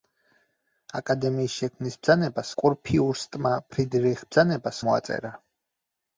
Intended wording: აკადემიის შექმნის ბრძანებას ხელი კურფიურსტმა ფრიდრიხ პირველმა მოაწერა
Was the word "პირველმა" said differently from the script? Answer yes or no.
yes